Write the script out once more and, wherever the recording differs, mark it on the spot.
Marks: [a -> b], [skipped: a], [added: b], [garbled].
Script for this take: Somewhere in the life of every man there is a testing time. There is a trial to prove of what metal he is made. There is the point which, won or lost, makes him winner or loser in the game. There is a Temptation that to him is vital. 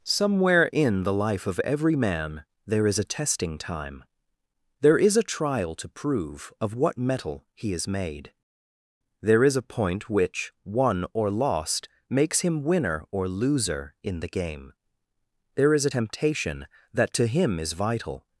Somewhere in the life of every man there is a testing time. There is a trial to prove of what metal he is made. There is [the -> a] point which, won or lost, makes him winner or loser in the game. There is a Temptation that to him is vital.